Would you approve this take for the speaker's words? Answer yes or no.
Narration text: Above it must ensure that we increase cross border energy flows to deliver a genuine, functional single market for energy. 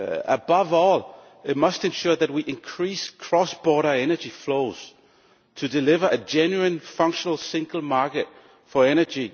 no